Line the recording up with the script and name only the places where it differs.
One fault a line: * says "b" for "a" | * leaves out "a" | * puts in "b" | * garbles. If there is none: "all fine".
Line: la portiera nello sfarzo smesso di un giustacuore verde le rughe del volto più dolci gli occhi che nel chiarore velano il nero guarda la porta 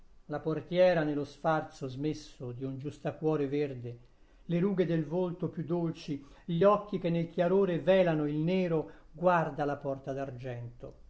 all fine